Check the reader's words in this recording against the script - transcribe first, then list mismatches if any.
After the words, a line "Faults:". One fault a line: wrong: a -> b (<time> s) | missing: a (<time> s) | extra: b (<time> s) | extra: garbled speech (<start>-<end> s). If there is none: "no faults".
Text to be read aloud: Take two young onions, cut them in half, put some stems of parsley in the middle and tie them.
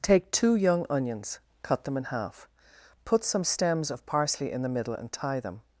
Take two young onions, cut them in half, put some stems of parsley in the middle and tie them.
Faults:
no faults